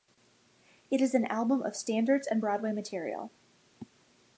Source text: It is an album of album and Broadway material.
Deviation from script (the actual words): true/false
true